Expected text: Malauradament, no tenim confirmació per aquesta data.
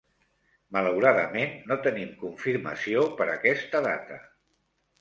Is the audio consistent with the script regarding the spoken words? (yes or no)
yes